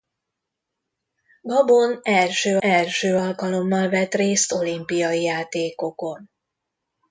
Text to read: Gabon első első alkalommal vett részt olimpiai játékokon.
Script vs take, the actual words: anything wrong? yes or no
no